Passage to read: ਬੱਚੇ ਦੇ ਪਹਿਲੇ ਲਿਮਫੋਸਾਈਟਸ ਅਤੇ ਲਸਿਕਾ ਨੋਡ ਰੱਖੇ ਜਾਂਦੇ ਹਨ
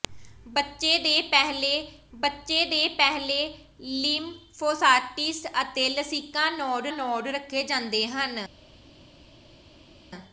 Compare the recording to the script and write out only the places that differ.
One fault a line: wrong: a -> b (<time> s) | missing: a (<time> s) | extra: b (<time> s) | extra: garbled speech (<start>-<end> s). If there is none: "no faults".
extra: ਬੱਚੇ ਦੇ ਪਹਿਲੇ (2.1 s)
extra: ਨੋਡ (6.9 s)